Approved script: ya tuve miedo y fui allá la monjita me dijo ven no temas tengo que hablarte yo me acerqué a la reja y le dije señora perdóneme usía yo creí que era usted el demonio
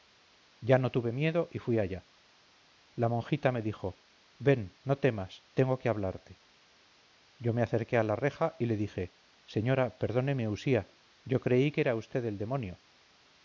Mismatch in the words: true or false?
true